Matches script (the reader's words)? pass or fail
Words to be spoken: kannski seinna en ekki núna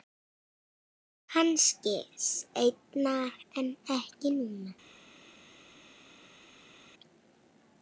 pass